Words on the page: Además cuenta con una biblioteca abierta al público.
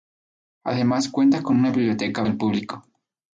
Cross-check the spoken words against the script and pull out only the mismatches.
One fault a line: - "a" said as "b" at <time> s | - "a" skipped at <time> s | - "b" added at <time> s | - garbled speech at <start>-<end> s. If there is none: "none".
- "abierta" skipped at 2.2 s